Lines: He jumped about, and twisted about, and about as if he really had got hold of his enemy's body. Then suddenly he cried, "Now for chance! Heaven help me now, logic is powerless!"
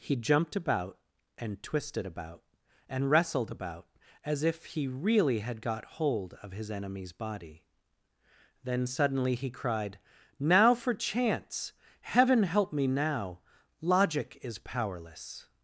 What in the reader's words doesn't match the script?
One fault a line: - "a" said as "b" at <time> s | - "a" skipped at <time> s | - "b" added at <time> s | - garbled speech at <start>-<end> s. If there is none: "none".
- "wrestled" added at 3.1 s